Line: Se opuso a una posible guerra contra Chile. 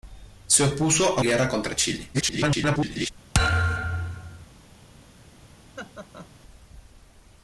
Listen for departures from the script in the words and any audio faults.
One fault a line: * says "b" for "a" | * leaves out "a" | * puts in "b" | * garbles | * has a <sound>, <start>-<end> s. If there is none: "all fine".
* leaves out "una posible"
* garbles
* has a thud, 3.3-4.5 s
* has a laugh, 5.8-6.3 s